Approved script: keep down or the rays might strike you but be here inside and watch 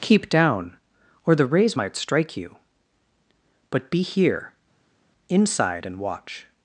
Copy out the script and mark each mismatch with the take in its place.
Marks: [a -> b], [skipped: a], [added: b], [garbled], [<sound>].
keep down or the rays might strike you but be here inside and watch